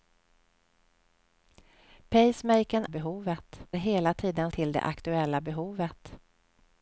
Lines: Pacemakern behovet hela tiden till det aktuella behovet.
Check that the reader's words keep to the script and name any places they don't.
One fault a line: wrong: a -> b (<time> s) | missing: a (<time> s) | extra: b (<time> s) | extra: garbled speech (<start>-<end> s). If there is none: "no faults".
no faults